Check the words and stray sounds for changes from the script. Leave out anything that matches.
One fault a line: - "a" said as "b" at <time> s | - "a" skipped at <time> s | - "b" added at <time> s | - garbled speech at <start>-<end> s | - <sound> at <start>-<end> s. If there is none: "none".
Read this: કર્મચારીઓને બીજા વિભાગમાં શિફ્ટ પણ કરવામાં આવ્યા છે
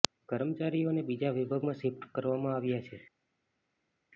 - "પણ" skipped at 2.1 s